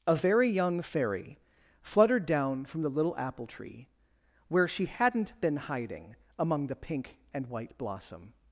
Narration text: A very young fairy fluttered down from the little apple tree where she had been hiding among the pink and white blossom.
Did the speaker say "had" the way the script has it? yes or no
no